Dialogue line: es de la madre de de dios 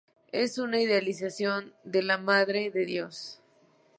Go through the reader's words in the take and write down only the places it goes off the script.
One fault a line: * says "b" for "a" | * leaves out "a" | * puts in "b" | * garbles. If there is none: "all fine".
* puts in "una idealización"
* leaves out "de"